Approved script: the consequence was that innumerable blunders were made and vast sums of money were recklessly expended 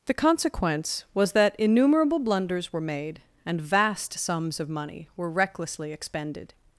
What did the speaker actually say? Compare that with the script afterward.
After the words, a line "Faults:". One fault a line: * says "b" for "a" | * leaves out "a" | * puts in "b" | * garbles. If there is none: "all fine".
the consequence was that innumerable blunders were made and vast sums of money were recklessly expended
Faults:
all fine